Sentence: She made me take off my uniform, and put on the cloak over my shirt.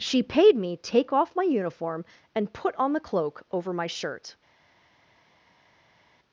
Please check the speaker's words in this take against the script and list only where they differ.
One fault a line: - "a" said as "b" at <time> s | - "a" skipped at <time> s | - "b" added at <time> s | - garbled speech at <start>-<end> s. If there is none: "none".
- "made" said as "paid" at 0.2 s